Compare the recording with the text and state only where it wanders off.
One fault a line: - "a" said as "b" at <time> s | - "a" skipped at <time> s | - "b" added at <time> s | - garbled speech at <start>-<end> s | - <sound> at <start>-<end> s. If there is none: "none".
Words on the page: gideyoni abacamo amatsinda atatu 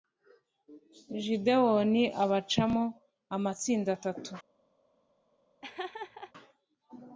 - laugh at 5.6-6.3 s